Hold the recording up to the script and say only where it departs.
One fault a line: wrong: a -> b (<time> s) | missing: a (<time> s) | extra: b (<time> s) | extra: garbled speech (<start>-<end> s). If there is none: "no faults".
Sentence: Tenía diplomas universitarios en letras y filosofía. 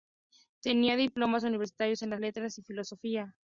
no faults